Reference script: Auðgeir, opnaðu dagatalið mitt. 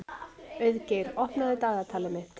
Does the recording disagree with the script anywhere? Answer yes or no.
no